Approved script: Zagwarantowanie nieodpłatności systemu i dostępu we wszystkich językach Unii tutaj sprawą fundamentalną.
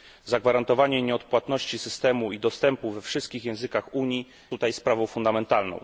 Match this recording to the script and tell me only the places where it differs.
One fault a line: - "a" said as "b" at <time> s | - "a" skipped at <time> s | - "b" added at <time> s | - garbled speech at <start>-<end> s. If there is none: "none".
none